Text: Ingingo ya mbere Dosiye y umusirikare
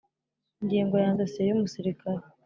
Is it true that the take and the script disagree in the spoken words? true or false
true